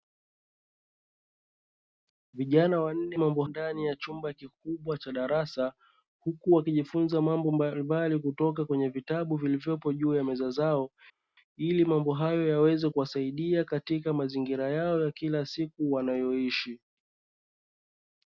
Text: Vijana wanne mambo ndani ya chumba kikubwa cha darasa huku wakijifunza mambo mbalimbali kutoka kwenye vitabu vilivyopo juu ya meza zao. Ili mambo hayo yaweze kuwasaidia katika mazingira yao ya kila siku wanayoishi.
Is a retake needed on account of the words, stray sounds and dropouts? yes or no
no